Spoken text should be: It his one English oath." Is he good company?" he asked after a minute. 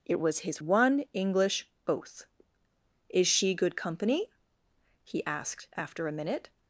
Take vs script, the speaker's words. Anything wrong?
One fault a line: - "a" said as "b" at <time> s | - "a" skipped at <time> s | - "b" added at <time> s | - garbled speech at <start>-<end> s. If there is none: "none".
- "was" added at 0.2 s
- "he" said as "she" at 3.3 s